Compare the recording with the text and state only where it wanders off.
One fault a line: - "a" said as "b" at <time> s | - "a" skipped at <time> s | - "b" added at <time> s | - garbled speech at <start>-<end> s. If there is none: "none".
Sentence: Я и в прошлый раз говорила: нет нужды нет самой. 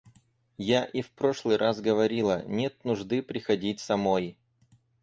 - "нет" said as "приходить" at 3.2 s